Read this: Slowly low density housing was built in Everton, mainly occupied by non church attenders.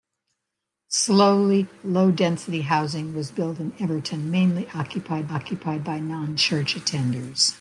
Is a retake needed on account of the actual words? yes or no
yes